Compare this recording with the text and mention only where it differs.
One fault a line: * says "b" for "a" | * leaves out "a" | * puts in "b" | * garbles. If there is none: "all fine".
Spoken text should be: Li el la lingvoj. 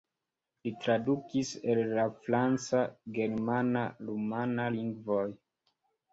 * puts in "tradukis"
* puts in "franca germana rumana"